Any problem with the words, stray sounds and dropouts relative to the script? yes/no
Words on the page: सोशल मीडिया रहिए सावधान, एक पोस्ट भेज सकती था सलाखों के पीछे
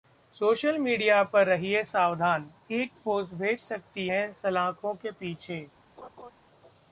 yes